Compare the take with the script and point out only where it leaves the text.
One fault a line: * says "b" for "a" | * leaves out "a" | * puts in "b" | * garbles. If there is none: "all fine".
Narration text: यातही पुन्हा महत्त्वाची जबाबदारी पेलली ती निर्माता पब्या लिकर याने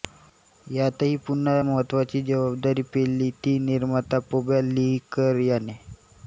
all fine